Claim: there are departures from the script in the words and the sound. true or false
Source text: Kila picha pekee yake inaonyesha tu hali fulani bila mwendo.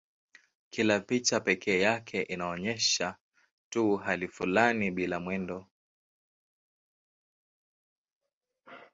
false